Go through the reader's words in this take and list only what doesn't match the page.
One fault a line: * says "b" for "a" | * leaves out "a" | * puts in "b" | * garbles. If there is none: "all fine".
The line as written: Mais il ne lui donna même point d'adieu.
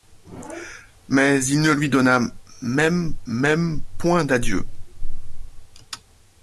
* puts in "même"